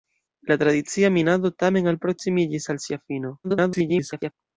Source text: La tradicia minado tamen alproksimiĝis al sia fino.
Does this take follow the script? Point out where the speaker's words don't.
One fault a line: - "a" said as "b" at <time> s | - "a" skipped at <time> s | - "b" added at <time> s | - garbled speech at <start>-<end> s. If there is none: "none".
- garbled speech at 3.4-4.3 s